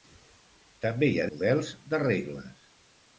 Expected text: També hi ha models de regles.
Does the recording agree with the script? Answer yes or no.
yes